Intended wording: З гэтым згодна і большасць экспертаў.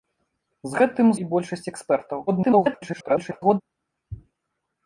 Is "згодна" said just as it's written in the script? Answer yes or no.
no